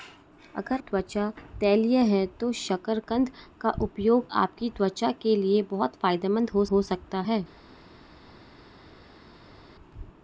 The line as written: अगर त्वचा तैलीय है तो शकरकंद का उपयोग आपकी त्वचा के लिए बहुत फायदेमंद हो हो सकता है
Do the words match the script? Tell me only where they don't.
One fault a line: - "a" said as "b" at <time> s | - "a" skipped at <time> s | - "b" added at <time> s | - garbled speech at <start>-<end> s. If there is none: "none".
none